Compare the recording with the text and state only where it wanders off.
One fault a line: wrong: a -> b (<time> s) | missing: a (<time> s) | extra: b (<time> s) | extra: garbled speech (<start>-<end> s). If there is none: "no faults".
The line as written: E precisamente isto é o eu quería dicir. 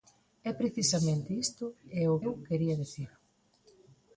no faults